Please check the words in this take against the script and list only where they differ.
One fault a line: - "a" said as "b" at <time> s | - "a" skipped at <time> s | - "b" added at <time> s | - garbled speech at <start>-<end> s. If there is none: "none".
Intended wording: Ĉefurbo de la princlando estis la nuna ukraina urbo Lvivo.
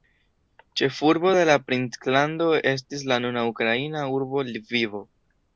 none